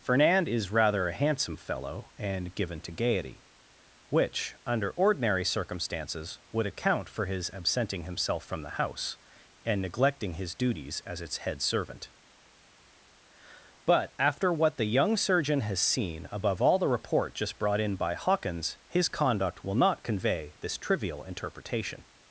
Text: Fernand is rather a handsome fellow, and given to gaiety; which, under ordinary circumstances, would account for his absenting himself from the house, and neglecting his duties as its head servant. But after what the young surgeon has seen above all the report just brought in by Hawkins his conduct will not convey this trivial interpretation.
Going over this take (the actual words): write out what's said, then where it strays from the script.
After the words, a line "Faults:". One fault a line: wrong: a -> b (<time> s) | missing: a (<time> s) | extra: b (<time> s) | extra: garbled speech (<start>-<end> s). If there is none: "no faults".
Fernand is rather a handsome fellow, and given to gaiety; which, under ordinary circumstances, would account for his absenting himself from the house, and neglecting his duties as its head servant. But after what the young surgeon has seen above all the report just brought in by Hawkins his conduct will not convey this trivial interpretation.
Faults:
no faults